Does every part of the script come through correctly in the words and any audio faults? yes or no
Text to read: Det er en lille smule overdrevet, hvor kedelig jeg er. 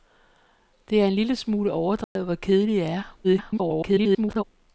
no